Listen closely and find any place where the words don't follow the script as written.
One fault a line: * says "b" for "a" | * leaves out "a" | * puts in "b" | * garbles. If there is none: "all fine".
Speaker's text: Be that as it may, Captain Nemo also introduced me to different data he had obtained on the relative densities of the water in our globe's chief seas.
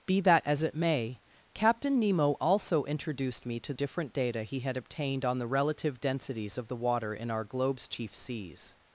all fine